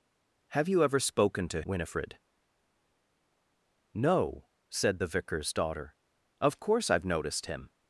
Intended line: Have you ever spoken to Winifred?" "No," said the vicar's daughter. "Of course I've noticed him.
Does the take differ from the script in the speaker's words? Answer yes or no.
no